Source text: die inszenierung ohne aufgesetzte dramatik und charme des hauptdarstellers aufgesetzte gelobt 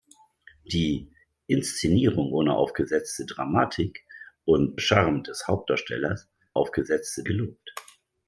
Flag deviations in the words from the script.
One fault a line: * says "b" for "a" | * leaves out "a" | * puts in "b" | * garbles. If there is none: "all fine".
all fine